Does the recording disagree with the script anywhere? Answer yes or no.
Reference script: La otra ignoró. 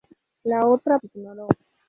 no